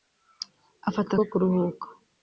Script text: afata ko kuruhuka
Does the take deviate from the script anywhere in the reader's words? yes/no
no